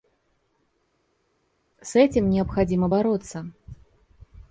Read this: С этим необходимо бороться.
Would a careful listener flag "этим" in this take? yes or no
no